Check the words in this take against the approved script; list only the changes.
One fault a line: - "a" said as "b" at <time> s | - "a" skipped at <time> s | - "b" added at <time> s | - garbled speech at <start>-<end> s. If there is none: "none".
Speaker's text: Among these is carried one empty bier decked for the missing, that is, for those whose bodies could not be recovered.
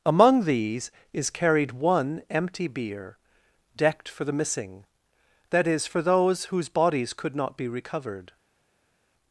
none